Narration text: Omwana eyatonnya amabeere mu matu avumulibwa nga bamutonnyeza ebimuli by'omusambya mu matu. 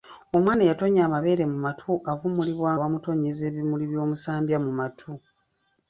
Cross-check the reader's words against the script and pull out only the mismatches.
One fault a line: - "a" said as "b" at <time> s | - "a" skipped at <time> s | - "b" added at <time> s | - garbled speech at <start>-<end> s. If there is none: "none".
- "nga" skipped at 2.7 s